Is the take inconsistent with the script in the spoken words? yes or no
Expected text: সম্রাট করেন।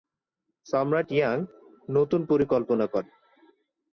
yes